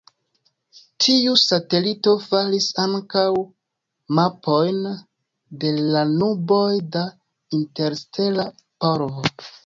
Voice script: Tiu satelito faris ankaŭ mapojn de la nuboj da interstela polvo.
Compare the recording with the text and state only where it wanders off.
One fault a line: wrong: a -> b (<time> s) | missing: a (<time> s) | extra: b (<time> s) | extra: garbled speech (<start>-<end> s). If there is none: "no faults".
no faults